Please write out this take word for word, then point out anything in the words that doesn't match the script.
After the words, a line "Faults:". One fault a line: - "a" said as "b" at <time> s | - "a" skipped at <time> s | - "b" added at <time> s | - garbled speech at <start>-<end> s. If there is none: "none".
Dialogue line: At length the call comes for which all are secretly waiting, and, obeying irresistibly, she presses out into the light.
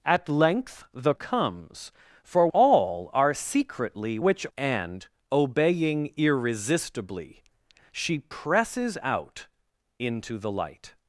At length the comes for all are secretly which, and, obeying irresistibly, she presses out into the light.
Faults:
- "call" skipped at 1.1 s
- "which" skipped at 2.5 s
- "waiting" said as "which" at 4.2 s